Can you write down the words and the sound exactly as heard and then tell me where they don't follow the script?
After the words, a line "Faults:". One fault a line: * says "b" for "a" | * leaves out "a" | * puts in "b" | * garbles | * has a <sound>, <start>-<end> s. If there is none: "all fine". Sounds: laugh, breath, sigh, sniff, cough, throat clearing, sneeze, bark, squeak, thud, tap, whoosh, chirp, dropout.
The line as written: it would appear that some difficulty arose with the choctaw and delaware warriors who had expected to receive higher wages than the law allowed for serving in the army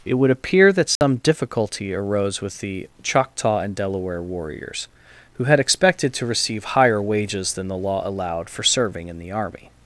it would appear that some difficulty arose with the choctaw and delaware warriors who had expected to receive higher wages than the law allowed for serving in the army
Faults:
* has a dropout, 1.0-1.0 s